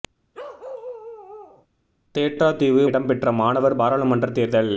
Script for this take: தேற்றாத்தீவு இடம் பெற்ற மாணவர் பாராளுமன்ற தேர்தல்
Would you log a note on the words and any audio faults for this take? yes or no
yes